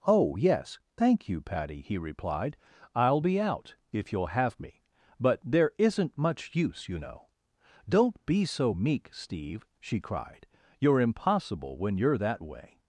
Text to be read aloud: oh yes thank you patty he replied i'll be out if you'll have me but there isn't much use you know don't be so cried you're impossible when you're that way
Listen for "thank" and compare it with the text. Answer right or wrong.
right